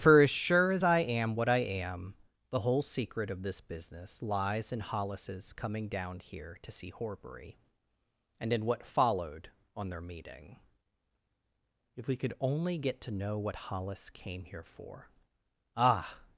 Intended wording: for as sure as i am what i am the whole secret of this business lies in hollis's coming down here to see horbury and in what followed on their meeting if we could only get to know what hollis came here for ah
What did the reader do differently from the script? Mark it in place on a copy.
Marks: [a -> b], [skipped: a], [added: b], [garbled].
for as sure as i am what i am the whole secret of this business lies in hollis's coming down here to see horbury and in what followed on their meeting if we could only get to know what hollis came here for ah